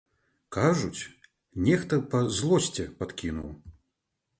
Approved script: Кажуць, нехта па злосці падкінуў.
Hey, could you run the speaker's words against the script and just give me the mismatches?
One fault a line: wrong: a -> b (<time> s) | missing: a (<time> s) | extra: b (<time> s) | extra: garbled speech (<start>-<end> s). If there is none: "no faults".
no faults